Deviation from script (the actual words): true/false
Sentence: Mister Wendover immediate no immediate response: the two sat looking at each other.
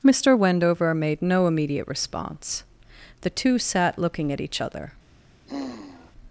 true